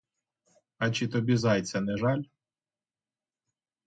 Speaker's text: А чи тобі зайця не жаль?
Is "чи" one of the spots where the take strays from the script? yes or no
no